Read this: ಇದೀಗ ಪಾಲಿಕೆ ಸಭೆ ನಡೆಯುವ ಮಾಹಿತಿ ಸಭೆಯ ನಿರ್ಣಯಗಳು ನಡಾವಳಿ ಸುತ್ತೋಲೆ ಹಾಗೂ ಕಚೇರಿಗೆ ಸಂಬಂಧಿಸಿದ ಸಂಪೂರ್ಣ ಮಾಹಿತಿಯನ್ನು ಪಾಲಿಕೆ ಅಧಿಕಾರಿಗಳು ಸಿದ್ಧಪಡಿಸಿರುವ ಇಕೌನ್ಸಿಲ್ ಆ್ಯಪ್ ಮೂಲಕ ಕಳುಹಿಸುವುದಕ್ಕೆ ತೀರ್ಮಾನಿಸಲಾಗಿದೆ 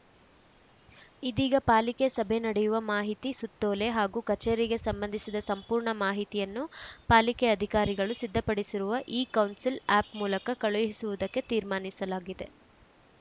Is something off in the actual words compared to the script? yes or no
yes